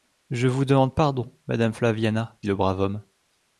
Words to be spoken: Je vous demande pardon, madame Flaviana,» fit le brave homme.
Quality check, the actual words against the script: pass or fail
fail